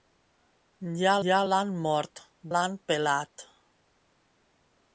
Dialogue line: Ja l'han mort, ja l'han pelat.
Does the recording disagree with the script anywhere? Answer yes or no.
yes